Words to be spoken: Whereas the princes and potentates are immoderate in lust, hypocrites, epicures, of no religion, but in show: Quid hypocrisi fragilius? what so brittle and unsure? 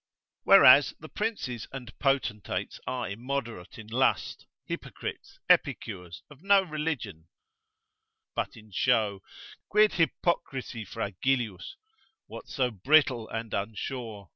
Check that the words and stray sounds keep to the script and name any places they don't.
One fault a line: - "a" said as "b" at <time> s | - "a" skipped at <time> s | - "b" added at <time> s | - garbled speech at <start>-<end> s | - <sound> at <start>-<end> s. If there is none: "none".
none